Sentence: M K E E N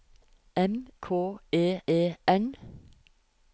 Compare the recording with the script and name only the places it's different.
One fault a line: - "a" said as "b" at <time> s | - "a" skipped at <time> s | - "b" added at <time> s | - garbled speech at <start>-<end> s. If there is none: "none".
none